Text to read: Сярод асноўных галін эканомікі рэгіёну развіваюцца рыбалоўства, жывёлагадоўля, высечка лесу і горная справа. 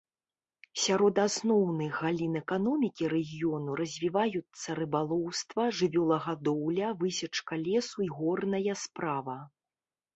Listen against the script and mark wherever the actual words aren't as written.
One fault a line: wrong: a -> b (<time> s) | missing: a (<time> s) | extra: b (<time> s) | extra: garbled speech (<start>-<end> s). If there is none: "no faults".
no faults